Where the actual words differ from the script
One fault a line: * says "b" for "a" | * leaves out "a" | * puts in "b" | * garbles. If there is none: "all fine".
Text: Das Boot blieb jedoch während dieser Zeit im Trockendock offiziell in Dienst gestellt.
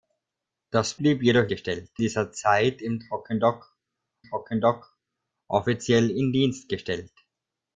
* leaves out "Boot"
* says "gestellt" for "während"
* puts in "Trockendock"